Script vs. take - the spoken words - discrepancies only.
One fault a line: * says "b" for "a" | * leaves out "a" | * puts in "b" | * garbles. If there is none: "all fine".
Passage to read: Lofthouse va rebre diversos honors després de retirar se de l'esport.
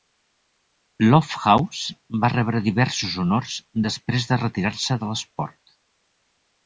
all fine